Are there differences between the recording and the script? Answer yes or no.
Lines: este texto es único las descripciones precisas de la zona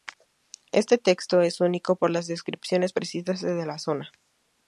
yes